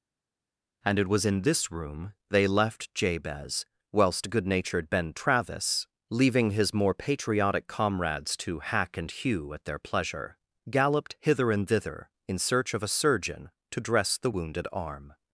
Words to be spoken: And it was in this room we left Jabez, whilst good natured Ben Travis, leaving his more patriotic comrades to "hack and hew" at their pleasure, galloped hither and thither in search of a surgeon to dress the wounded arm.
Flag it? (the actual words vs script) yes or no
yes